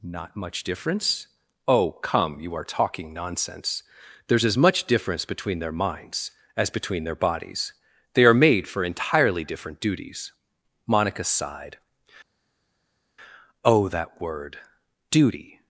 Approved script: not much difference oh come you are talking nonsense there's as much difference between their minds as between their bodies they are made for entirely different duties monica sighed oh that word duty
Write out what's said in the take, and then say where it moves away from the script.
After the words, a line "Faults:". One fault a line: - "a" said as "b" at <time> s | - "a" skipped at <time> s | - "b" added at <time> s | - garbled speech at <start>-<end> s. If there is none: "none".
not much difference oh come you are talking nonsense there's as much difference between their minds as between their bodies they are made for entirely different duties monica sighed oh that word duty
Faults:
none